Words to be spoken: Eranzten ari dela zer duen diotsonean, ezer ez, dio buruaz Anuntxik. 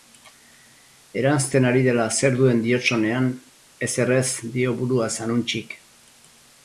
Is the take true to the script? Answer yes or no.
yes